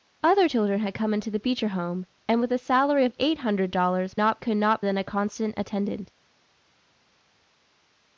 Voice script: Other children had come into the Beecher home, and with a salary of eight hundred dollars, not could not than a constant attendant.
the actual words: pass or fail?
pass